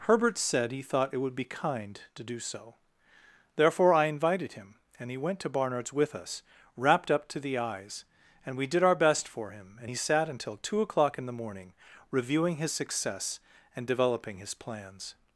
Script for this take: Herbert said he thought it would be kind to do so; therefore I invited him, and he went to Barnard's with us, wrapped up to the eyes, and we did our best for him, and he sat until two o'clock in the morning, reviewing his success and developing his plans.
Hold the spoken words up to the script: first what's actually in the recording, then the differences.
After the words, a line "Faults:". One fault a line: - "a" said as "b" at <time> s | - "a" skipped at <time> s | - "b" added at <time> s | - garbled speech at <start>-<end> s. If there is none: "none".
Herbert said he thought it would be kind to do so; therefore I invited him, and he went to Barnard's with us, wrapped up to the eyes, and we did our best for him, and he sat until two o'clock in the morning, reviewing his success and developing his plans.
Faults:
none